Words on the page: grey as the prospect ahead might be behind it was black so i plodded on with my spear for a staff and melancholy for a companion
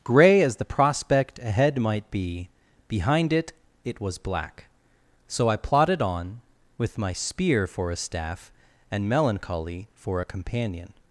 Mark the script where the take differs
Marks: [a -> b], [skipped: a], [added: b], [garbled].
grey as the prospect ahead might be behind it [added: it] was black so i plodded on with my spear for a staff and melancholy for a companion